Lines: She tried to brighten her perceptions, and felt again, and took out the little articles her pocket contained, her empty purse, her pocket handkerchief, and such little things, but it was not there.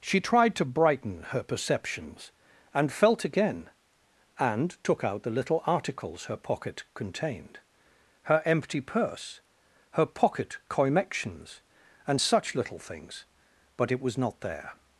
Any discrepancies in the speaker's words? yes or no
yes